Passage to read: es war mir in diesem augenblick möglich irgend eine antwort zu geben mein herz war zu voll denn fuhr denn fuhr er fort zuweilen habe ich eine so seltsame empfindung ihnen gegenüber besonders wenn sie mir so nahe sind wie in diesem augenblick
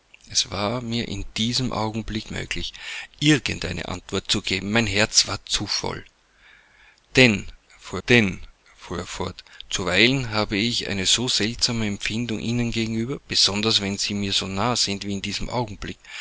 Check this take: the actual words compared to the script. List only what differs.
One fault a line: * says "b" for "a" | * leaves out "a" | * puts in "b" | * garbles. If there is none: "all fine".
all fine